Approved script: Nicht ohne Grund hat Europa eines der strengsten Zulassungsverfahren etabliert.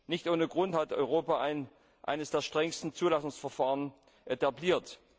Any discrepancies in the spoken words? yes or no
no